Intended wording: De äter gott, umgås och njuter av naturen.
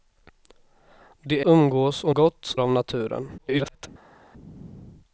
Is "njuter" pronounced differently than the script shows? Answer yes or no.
yes